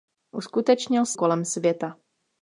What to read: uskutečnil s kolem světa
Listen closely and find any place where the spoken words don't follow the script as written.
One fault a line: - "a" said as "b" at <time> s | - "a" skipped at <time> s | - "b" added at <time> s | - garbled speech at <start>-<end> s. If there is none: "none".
none